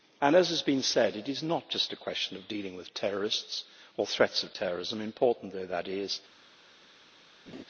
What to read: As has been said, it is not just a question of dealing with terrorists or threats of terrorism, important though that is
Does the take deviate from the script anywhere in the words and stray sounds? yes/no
yes